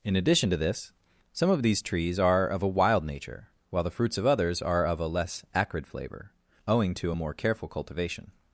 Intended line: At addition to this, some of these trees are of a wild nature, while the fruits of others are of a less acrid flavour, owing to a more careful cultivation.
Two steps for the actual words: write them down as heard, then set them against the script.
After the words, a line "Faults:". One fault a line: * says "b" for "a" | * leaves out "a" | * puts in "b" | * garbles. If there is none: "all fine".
In addition to this, some of these trees are of a wild nature, while the fruits of others are of a less acrid flavour, owing to a more careful cultivation.
Faults:
* says "In" for "At"